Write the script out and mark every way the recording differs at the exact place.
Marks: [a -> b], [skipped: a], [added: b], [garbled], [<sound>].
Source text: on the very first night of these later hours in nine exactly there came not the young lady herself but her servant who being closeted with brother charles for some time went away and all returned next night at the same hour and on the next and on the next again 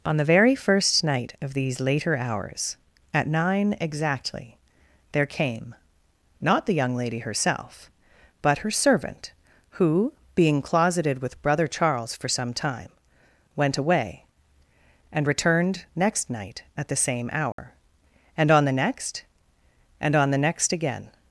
on the very first night of these later hours [in -> at] nine exactly there came not the young lady herself but her servant who being closeted with brother charles for some time went away and [skipped: all] returned next night at the same hour [dropout] and on the next and on the next again